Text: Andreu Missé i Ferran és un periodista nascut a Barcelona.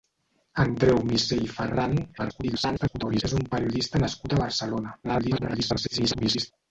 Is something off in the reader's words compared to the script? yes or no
yes